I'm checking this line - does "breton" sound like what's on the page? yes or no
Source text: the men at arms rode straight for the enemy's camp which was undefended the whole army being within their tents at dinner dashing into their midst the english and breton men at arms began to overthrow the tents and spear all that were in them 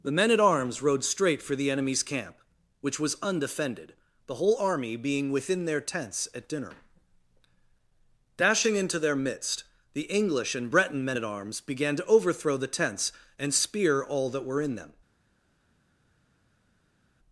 yes